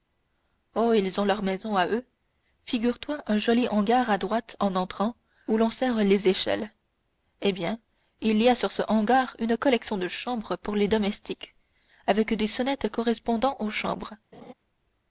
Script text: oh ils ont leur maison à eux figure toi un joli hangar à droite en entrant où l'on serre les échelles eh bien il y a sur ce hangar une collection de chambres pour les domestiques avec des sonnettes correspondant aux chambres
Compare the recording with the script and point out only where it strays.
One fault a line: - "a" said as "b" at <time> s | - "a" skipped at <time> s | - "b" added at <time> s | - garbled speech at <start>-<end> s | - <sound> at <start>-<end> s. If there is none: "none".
- laugh at 14.3-14.5 s